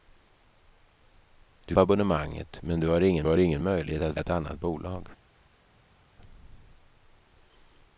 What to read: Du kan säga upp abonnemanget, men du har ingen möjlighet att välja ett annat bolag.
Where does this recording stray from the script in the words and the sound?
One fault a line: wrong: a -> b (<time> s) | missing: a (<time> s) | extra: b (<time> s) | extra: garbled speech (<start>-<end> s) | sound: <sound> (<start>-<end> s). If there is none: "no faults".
missing: kan säga upp (1.8 s)
extra: har ingen (3.2 s)
missing: välja (4.2 s)